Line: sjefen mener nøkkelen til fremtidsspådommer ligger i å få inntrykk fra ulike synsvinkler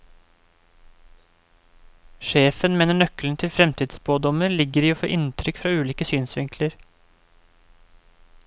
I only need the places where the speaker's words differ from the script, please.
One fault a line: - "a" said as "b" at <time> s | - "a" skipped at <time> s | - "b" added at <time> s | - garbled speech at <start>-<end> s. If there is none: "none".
none